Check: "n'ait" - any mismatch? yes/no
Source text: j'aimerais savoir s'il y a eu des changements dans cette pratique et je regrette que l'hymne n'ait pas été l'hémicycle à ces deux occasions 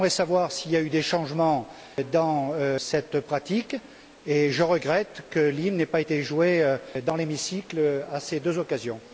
no